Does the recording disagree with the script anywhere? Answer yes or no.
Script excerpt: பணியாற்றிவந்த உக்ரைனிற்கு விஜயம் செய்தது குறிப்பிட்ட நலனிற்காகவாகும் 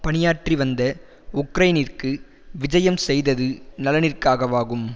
yes